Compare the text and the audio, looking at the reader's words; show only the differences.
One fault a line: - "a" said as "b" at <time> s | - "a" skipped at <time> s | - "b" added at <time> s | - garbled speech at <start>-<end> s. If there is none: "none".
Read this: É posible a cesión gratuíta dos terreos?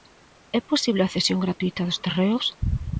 none